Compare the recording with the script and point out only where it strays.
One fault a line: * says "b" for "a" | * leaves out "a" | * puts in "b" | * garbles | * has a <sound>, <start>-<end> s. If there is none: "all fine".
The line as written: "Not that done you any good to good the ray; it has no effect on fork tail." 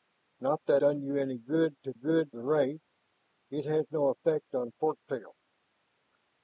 all fine